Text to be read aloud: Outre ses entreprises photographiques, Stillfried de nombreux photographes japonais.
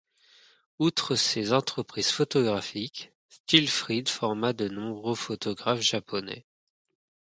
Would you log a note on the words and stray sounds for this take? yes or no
yes